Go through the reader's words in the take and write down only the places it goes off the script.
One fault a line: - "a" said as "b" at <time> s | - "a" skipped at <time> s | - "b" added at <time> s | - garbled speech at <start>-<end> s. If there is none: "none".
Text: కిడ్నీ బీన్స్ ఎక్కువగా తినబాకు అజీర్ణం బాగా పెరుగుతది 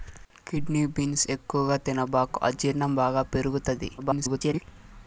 - garbled speech at 4.0-4.6 s